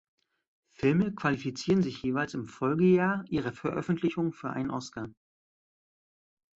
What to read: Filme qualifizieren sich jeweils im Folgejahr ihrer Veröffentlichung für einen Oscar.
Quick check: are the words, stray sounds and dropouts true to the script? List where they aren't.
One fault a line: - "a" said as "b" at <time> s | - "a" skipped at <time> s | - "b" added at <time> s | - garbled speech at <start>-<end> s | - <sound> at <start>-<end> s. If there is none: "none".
none